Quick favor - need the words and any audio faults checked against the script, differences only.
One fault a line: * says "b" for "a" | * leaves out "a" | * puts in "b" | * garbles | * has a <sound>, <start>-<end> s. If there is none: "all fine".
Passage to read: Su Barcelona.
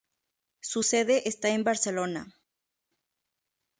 * puts in "sede está en"